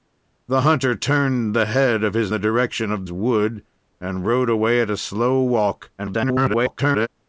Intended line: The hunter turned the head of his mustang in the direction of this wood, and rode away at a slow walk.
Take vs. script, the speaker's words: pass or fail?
fail